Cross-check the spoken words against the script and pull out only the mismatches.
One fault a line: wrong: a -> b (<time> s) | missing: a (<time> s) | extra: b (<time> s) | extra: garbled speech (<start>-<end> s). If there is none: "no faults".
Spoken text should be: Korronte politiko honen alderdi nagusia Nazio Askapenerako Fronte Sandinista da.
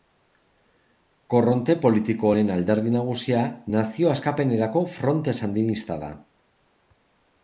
no faults